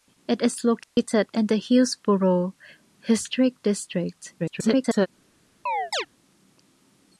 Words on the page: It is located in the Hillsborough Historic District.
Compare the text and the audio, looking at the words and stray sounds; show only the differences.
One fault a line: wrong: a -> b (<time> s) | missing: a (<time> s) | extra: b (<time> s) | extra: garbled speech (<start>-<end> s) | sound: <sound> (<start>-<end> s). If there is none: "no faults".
sound: dropout (0.8-1.0 s)
extra: garbled speech (4.4-5.1 s)
sound: chirp (5.7-6.1 s)